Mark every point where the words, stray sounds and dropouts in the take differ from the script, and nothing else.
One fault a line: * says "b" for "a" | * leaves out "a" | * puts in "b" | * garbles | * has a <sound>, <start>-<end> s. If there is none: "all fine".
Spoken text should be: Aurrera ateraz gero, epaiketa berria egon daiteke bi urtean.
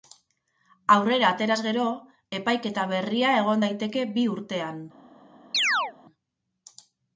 * has a chirp, 5.5-5.9 s